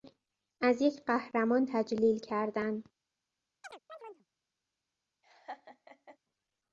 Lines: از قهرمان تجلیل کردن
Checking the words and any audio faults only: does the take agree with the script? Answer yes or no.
no